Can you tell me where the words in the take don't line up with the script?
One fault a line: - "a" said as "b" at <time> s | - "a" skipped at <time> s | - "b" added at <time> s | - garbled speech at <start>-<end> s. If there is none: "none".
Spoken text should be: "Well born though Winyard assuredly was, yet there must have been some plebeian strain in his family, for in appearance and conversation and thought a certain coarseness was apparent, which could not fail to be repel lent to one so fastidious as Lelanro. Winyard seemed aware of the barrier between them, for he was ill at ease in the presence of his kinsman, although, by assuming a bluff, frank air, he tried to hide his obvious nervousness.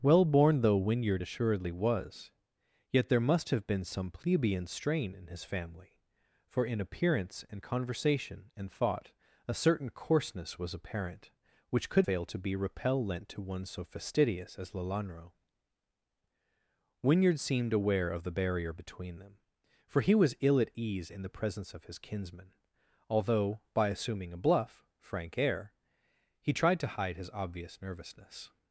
- "not" skipped at 12.1 s